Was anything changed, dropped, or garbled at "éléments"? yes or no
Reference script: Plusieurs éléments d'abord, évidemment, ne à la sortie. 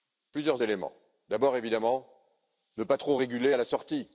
no